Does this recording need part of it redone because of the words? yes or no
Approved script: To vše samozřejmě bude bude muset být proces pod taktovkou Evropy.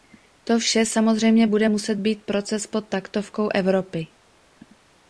yes